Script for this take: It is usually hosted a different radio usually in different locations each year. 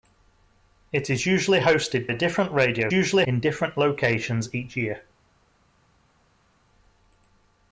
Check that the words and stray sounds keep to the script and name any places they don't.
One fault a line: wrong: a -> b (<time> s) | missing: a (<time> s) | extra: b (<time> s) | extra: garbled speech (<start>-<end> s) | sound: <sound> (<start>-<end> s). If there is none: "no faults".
no faults